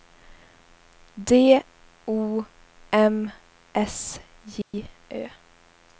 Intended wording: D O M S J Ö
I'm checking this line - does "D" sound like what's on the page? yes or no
yes